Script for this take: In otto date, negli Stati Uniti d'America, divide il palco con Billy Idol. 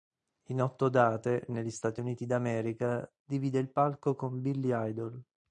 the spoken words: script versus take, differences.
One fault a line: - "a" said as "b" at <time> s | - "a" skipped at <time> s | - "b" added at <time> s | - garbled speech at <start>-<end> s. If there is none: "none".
none